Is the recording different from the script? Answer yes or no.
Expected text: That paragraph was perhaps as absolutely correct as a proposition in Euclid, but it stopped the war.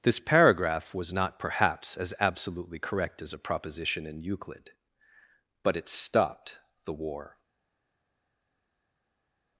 yes